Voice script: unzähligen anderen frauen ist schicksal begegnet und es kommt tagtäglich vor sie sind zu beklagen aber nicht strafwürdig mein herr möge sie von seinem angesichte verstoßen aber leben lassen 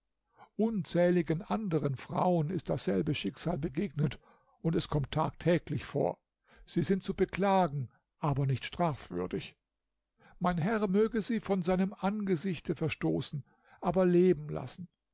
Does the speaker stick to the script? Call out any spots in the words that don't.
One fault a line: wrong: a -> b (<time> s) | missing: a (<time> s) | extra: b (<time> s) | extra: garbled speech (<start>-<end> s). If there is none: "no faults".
extra: dasselbe (2.7 s)